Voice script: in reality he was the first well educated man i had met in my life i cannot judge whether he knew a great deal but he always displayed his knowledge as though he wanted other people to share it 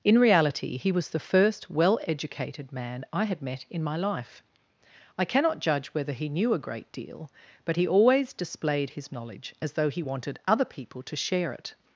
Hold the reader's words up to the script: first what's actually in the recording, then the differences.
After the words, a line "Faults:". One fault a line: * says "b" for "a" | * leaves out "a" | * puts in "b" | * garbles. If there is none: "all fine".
in reality he was the first well educated man i had met in my life i cannot judge whether he knew a great deal but he always displayed his knowledge as though he wanted other people to share it
Faults:
all fine